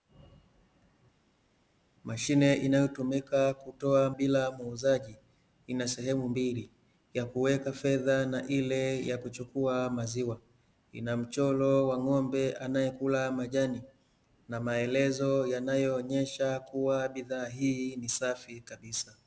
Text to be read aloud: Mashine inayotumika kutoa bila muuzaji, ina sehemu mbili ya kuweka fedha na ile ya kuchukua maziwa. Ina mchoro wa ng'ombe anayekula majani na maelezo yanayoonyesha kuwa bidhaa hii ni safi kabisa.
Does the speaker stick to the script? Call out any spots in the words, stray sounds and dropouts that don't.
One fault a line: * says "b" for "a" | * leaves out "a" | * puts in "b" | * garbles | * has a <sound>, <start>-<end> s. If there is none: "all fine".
all fine